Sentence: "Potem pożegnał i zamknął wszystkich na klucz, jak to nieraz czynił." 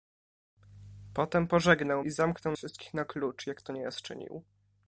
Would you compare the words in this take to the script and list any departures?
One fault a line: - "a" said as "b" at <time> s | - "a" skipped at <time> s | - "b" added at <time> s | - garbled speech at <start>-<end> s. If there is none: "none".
none